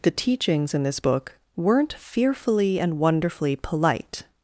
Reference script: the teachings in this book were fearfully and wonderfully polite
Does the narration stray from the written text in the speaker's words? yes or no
yes